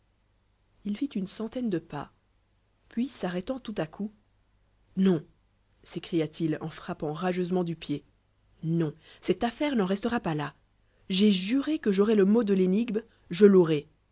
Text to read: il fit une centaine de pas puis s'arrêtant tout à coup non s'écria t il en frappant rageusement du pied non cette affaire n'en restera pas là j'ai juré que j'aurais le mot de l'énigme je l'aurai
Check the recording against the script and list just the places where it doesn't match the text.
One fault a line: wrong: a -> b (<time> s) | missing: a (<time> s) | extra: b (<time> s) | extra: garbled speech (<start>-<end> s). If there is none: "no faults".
no faults